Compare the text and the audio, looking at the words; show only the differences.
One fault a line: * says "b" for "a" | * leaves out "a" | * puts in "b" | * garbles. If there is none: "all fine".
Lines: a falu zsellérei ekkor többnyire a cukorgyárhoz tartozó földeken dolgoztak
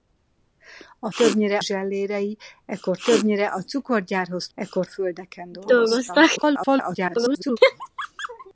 * says "többnyire" for "falu"
* says "ekkor" for "tartozó"
* garbles